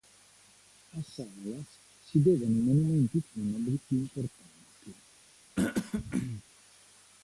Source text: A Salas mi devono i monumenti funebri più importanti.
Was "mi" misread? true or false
true